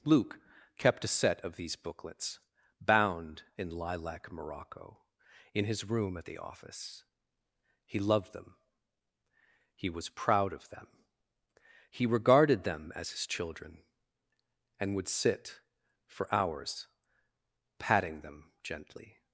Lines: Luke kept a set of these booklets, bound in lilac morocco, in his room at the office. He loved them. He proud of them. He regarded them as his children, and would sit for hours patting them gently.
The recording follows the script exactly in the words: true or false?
false